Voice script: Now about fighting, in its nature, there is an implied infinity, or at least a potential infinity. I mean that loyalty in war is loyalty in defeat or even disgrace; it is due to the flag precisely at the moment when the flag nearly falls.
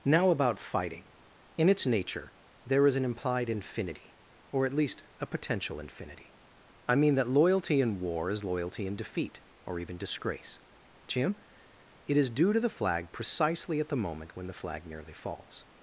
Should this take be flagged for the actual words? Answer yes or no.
yes